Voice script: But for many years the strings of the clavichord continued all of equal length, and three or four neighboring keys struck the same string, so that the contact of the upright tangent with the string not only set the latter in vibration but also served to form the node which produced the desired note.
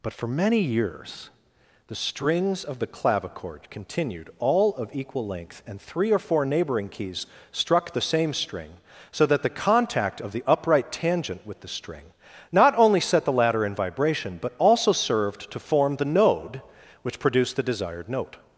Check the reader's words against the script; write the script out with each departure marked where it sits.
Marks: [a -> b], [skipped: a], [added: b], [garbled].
But for many years the strings of the clavichord continued all of equal length, and three or four neighboring keys struck the same string, so that the contact of the upright tangent with the string not only set the latter in vibration but also served to form the node which produced the desired note.